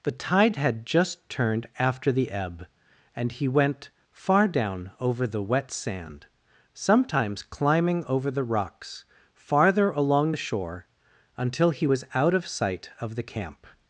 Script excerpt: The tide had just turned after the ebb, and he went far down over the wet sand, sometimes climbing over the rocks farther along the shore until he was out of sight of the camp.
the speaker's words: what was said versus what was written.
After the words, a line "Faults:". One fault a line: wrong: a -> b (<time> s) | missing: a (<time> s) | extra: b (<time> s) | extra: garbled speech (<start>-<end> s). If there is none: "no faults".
The tide had just turned after the ebb, and he went far down over the wet sand, sometimes climbing over the rocks farther along the shore until he was out of sight of the camp.
Faults:
no faults